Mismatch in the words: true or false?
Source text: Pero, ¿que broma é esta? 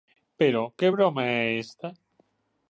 false